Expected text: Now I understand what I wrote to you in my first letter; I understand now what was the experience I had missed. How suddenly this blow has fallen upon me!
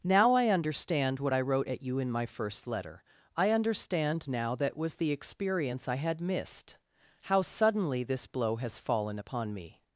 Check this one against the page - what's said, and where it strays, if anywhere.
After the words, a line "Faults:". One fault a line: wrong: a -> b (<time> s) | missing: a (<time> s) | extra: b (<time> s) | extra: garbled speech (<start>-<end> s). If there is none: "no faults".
Now I understand what I wrote at you in my first letter; I understand now that was the experience I had missed. How suddenly this blow has fallen upon me!
Faults:
wrong: to -> at (1.7 s)
wrong: what -> that (4.5 s)